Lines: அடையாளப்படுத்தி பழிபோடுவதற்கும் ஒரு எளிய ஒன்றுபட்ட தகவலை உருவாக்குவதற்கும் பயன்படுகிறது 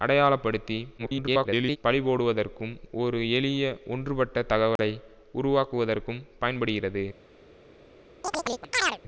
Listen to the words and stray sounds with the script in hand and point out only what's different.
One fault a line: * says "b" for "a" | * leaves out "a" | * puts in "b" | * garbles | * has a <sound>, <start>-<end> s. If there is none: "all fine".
* garbles
* has a dropout, 4.8-4.8 s
* has a chirp, 8.2-9.0 s